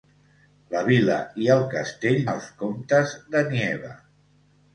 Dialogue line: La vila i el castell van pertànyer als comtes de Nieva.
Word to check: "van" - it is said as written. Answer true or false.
false